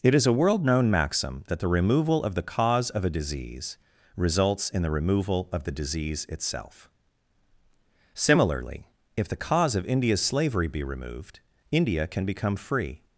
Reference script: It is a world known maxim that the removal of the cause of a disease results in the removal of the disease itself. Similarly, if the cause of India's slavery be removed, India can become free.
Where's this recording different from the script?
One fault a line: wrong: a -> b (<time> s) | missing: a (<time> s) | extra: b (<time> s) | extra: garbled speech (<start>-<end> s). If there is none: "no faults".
no faults